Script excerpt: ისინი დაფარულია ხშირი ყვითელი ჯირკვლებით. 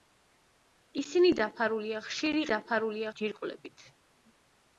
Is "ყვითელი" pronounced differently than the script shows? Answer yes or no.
yes